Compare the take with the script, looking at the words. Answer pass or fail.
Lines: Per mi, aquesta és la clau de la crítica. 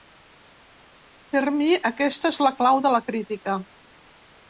pass